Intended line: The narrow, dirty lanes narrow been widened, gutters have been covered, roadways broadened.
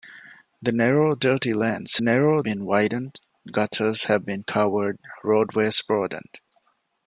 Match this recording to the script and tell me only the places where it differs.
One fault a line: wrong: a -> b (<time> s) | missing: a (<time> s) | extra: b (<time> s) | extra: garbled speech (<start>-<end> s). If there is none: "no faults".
no faults